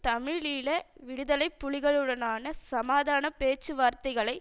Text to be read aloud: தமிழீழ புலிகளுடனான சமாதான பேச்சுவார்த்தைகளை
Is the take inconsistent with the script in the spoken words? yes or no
yes